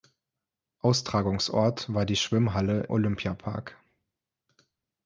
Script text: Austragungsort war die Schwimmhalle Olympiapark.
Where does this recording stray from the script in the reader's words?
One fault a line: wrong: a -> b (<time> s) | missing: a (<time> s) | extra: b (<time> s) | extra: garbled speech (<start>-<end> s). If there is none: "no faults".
no faults